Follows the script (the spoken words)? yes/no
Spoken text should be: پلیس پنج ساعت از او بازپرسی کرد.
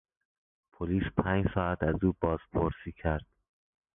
yes